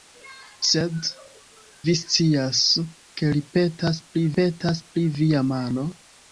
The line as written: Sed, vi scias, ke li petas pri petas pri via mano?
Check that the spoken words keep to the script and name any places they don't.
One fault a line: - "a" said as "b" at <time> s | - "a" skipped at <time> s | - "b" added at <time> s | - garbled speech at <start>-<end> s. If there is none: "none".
none